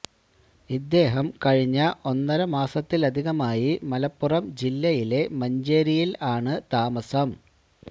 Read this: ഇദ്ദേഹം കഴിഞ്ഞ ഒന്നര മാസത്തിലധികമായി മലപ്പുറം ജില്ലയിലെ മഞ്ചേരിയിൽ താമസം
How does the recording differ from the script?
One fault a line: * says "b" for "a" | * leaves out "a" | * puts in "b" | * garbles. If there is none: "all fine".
* puts in "ആണ്"